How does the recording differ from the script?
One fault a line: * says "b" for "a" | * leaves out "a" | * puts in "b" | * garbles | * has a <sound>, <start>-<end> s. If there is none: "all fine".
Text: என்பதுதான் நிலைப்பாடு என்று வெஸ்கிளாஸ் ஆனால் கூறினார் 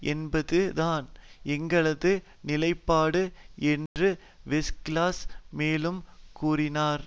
* puts in "எங்களது"
* has a dropout, 3.9-4.0 s
* says "மேலும்" for "ஆனால்"